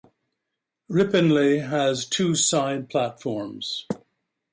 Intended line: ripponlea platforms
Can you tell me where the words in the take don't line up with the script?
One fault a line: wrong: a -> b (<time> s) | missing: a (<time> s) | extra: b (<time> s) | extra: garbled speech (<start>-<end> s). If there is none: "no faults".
extra: has two side (1.7 s)